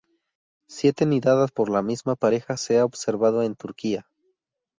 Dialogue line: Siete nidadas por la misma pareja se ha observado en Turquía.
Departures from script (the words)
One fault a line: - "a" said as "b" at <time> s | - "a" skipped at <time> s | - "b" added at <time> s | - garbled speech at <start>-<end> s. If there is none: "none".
none